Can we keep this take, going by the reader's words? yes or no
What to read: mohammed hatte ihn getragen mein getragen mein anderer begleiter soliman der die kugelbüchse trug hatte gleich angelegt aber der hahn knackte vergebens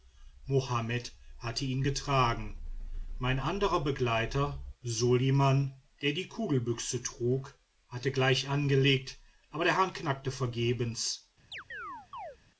no